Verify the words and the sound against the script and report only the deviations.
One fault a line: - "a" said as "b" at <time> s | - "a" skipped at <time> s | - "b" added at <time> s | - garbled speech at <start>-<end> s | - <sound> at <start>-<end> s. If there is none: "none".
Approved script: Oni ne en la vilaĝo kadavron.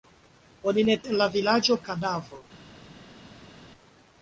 none